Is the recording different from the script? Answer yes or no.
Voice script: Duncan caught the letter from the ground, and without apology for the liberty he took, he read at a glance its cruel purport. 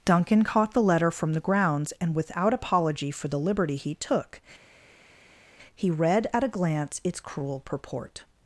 yes